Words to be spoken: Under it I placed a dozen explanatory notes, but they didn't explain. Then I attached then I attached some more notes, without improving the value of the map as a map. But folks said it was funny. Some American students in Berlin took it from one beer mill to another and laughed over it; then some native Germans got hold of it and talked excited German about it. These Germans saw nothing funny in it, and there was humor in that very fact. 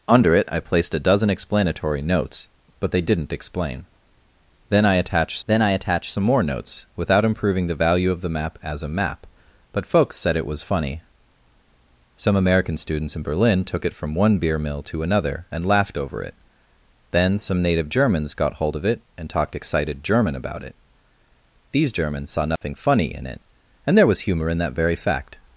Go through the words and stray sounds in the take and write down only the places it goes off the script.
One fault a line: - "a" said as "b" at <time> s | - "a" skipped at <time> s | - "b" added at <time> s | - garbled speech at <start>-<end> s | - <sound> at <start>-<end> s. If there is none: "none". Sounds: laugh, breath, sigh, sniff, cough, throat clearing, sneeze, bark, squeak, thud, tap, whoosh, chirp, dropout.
- dropout at 22.6-22.6 s